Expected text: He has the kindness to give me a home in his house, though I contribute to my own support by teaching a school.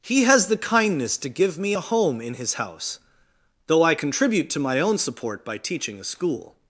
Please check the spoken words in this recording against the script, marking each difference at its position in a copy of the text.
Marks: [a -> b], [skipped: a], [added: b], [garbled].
He has the kindness to give me a home in his house, though I contribute to my own support by teaching a school.